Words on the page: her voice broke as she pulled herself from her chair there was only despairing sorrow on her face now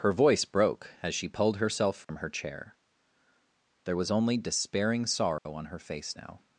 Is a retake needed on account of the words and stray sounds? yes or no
yes